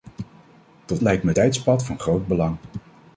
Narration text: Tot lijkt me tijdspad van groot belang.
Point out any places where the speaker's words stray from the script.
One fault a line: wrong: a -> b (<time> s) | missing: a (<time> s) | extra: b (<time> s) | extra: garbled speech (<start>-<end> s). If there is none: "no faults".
no faults